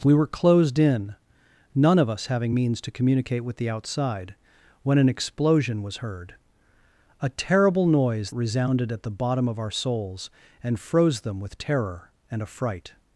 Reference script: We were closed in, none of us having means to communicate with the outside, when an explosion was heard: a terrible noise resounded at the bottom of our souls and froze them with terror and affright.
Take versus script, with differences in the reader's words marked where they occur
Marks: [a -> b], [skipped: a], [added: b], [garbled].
We were closed in, none of us having means to communicate with the outside, when an explosion was heard: a terrible noise resounded at the bottom of our souls and froze them with terror and affright.